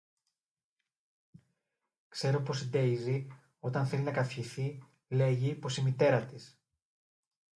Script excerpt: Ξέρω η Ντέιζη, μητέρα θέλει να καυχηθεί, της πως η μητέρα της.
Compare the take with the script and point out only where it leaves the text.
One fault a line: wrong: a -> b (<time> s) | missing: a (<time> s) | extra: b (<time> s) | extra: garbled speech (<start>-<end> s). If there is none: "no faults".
extra: πως (2.4 s)
wrong: μητέρα -> όταν (3.6 s)
wrong: της -> λέγει (5.1 s)